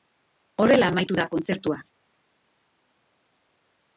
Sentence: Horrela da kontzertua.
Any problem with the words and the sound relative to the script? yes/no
yes